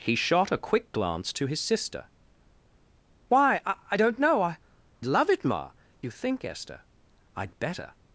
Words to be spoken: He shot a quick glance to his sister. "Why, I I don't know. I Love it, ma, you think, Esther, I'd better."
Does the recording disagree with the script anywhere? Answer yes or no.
no